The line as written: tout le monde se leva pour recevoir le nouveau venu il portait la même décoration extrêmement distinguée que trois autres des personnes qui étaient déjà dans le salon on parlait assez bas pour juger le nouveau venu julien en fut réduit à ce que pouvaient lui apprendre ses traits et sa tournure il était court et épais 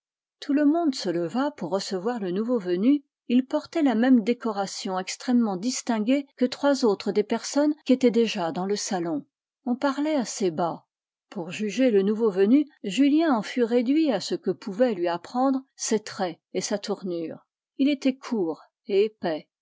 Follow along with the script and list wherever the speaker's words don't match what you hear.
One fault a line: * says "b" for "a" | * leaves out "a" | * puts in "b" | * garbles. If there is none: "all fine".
all fine